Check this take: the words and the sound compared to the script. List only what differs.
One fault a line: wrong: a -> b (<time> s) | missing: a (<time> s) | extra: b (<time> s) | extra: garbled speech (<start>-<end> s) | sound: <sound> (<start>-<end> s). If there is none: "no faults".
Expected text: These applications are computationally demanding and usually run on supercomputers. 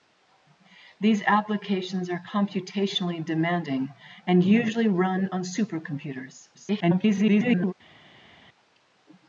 extra: garbled speech (6.5-7.7 s)